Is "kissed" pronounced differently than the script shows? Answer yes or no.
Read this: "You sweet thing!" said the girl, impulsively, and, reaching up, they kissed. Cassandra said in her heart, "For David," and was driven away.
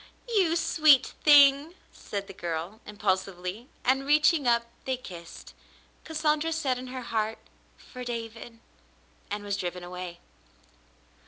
no